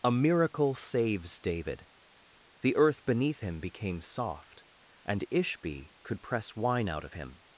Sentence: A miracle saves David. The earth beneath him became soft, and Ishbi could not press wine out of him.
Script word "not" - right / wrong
wrong